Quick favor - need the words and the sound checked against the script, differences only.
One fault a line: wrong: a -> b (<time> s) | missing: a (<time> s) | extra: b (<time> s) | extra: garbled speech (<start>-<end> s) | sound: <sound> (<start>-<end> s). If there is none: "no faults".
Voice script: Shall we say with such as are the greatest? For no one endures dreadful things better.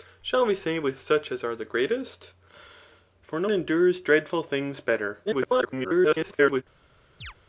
missing: one (3.5 s)
extra: garbled speech (5.3-6.6 s)
sound: chirp (7.2-7.3 s)